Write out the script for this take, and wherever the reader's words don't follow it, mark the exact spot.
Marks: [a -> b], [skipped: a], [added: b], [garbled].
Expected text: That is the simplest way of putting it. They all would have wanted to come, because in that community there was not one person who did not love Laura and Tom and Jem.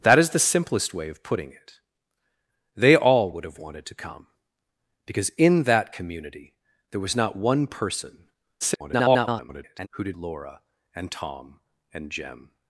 That is the simplest way of putting it. They all would have wanted to come, because in that community there was not one person [garbled] who did [skipped: not love] Laura and Tom and Jem.